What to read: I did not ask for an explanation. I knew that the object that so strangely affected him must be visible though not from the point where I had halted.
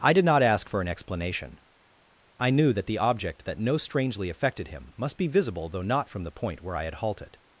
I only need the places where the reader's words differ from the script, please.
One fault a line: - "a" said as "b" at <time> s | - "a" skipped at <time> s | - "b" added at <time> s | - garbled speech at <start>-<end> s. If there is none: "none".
- "so" said as "no" at 3.6 s